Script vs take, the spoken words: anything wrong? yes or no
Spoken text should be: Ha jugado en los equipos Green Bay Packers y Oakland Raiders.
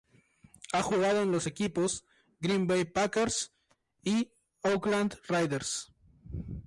no